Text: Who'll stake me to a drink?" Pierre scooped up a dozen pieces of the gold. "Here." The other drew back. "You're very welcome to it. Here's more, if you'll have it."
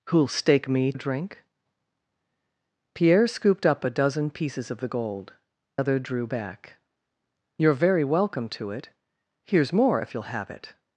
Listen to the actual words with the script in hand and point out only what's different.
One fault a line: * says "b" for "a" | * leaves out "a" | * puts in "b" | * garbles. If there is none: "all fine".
* leaves out "to"
* leaves out "Here The"